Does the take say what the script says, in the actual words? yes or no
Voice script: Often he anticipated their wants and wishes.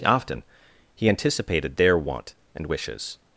no